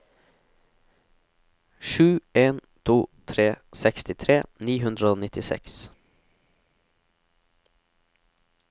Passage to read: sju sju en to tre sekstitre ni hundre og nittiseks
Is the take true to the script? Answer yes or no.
no